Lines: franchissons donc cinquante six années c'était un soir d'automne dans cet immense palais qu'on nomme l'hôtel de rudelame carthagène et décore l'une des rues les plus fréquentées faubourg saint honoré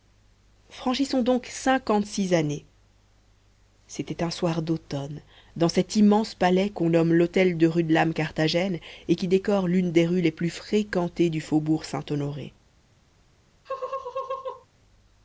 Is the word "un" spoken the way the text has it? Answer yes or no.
yes